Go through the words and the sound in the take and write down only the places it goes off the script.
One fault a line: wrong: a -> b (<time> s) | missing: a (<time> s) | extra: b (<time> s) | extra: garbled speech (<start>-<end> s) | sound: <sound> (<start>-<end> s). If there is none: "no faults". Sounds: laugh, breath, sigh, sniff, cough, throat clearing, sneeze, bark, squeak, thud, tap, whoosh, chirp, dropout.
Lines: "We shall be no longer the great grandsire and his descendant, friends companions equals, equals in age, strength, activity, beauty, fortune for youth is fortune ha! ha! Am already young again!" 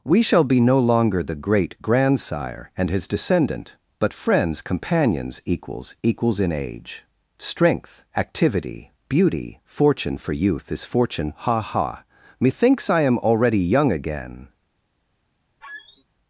extra: but (4.0 s)
extra: Methinks I (12.4 s)
sound: squeak (15.6-16.0 s)